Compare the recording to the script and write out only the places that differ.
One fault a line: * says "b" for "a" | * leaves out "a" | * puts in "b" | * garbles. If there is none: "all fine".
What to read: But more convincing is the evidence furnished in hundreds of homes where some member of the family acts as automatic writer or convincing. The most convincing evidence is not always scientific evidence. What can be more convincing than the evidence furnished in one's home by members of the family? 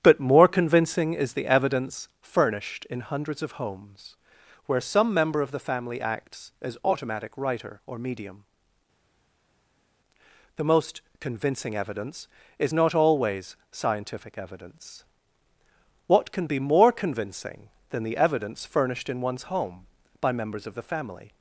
* says "medium" for "convincing"